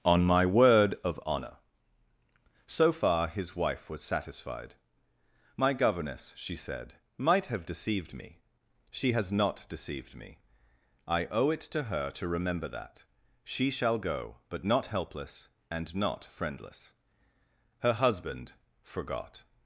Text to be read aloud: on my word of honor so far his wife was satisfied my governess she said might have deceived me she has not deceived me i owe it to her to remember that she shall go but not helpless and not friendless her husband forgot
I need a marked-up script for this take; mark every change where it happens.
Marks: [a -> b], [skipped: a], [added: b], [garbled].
on my word of honor so far his wife was satisfied my governess she said might have deceived me she has not deceived me i owe it to her to remember that she shall go but not helpless and not friendless her husband forgot